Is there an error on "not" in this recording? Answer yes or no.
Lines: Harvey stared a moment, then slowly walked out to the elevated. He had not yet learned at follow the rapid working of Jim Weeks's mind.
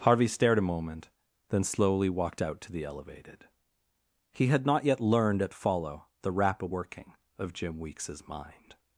no